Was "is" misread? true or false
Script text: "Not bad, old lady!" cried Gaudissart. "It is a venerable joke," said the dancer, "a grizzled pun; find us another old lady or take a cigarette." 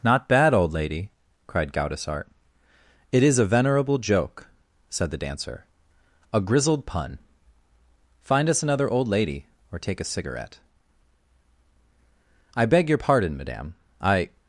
false